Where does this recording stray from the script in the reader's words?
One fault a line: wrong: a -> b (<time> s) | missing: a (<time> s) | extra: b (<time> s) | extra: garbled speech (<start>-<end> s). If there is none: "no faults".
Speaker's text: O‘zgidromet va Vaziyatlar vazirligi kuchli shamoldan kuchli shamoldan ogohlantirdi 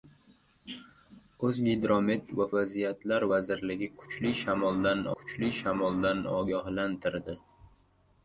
no faults